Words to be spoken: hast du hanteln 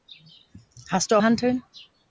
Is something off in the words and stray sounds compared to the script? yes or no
no